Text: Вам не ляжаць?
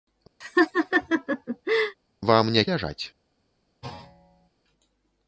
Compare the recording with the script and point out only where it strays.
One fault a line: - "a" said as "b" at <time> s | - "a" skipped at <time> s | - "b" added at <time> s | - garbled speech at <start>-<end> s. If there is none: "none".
none